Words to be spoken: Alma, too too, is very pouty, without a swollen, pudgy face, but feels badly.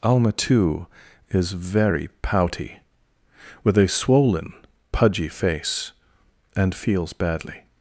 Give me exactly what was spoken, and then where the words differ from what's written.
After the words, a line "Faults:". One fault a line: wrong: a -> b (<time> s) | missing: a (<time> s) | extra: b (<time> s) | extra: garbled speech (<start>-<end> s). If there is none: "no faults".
Alma, too, is very pouty, with a swollen, pudgy face, and feels badly.
Faults:
missing: too (0.9 s)
wrong: without -> with (3.6 s)
wrong: but -> and (6.5 s)